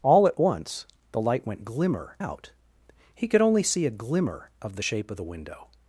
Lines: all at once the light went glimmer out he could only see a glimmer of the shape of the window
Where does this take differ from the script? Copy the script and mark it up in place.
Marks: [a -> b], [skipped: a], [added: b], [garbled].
all at once the light went glimmer out he could only see a glimmer of the shape of the window